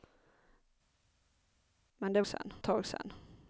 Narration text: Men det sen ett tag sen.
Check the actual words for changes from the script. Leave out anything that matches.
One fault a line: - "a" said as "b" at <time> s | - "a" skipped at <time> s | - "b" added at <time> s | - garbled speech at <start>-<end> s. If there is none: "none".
none